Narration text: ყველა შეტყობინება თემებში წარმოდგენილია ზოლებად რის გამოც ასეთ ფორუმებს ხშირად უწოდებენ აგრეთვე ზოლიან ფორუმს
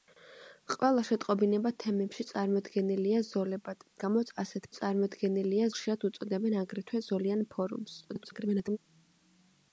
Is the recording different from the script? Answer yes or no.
yes